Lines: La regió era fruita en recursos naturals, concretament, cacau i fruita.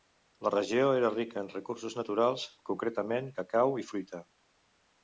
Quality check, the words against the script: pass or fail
fail